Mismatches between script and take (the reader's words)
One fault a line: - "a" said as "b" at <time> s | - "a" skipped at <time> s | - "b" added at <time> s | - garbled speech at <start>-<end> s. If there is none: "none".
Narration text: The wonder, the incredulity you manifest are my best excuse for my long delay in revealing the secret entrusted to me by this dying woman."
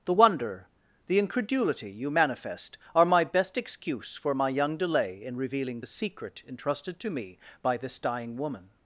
- "long" said as "young" at 4.5 s